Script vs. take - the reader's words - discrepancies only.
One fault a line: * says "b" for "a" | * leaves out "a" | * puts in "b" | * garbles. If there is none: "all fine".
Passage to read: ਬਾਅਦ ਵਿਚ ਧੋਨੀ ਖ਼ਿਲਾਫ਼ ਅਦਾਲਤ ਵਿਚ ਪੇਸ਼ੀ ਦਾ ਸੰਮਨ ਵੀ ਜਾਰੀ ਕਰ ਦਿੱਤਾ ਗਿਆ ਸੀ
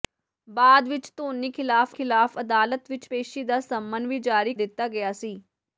* puts in "ਖ਼ਿਲਾਫ਼"
* leaves out "ਕਰ"